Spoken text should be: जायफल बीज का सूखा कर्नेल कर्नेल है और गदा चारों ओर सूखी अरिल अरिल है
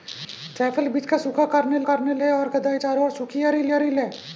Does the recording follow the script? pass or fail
pass